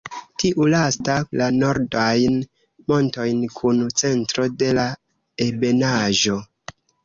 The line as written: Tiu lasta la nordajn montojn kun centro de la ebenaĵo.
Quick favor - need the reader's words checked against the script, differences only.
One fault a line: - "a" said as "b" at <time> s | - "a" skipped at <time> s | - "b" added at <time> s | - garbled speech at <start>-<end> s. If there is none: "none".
none